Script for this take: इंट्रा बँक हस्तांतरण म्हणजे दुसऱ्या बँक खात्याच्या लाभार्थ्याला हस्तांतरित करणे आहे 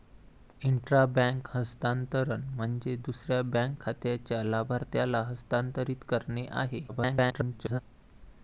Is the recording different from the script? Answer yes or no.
yes